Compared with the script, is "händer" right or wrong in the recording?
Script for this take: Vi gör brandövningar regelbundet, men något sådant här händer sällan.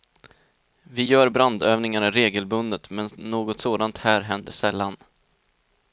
right